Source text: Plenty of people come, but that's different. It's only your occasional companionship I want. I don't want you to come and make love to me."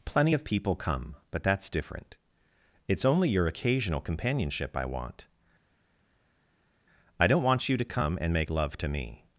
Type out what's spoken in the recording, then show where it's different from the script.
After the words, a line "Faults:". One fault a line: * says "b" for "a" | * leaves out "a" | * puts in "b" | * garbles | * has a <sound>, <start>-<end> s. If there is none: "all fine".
Plenty of people come, but that's different. It's only your occasional companionship I want. I don't want you to come and make love to me."
Faults:
all fine